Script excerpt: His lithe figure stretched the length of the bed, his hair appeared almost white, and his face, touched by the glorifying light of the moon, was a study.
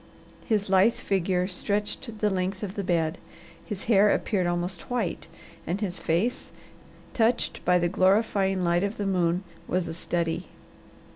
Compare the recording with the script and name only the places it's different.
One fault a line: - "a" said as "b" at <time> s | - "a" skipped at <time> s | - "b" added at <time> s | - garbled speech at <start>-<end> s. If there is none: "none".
none